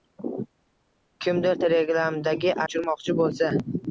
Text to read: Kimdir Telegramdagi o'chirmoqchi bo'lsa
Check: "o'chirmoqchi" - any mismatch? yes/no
no